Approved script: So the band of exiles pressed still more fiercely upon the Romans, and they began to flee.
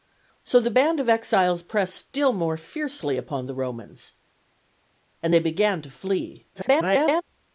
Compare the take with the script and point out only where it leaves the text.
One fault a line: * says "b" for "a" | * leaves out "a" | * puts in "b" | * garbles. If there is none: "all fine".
* garbles